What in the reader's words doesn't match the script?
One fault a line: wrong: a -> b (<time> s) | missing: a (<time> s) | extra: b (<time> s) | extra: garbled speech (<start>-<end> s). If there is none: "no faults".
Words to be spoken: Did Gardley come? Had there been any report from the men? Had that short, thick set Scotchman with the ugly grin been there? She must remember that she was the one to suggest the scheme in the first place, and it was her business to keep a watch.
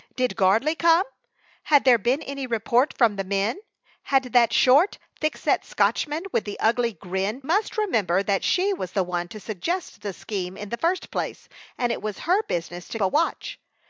missing: been there She (7.4 s)
missing: keep (13.0 s)